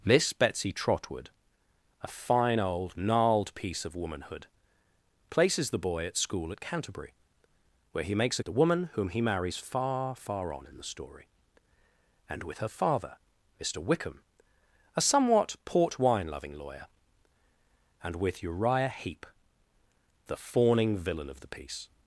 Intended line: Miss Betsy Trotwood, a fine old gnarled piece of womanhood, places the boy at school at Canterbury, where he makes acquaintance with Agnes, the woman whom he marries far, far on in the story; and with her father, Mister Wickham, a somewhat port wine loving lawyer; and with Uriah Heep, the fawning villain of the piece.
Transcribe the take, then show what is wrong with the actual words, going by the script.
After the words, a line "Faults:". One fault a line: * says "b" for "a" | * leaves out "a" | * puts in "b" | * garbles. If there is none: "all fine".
Miss Betsy Trotwood, a fine old gnarled piece of womanhood, places the boy at school at Canterbury, where he makes the woman whom he marries far, far on in the story; and with her father, Mister Wickham, a somewhat port wine loving lawyer; and with Uriah Heep, the fawning villain of the piece.
Faults:
* leaves out "acquaintance with Agnes"